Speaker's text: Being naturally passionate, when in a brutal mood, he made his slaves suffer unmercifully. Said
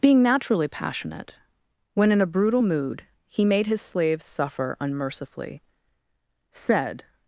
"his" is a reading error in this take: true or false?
false